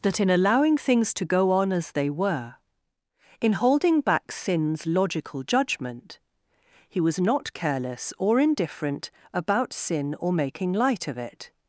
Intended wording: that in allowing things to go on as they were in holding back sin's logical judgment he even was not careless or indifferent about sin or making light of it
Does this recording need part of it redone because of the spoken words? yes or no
yes